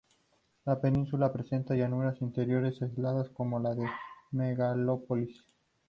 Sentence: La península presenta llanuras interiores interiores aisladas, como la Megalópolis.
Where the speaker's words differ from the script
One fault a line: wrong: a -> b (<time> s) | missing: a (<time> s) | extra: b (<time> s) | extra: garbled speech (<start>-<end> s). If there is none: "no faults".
missing: interiores (2.8 s)
extra: de (3.7 s)